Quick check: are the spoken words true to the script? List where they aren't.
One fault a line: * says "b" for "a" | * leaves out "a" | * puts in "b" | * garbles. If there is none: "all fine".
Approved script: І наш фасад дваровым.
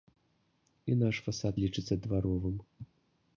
* puts in "лічыцца"